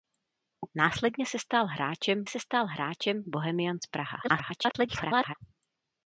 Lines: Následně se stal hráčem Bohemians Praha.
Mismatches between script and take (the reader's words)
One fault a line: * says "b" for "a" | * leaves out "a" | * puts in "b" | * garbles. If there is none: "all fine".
* puts in "se stal hráčem"
* garbles